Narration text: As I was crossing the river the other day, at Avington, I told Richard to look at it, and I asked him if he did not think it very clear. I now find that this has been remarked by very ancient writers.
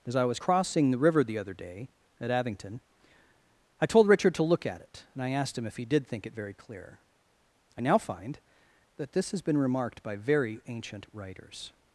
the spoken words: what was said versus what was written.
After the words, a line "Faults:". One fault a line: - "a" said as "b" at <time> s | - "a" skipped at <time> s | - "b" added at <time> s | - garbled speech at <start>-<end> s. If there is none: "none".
As I was crossing the river the other day, at Avington, I told Richard to look at it, and I asked him if he did think it very clear. I now find that this has been remarked by very ancient writers.
Faults:
- "not" skipped at 6.1 s